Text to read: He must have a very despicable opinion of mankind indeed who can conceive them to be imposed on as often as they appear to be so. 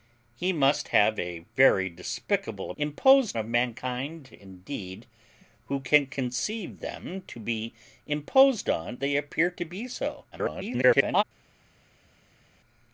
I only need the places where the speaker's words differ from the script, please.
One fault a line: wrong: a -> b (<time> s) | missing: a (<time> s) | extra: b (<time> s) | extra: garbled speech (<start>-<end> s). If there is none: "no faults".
wrong: opinion -> imposed (2.8 s)
missing: as often as (9.0 s)
extra: garbled speech (10.3-11.2 s)